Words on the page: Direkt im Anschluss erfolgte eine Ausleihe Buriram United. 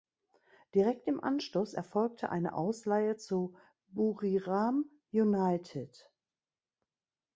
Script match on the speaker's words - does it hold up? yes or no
no